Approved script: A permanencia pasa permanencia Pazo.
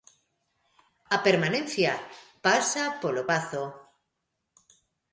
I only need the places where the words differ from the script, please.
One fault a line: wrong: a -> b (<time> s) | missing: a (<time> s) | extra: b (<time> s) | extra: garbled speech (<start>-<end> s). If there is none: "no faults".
wrong: permanencia -> polo (3.0 s)